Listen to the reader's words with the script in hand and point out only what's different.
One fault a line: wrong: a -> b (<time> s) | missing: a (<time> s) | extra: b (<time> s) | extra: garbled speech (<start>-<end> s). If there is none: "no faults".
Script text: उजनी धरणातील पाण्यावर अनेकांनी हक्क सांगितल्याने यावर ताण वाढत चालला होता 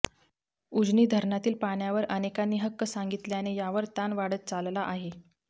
wrong: होता -> आहे (4.8 s)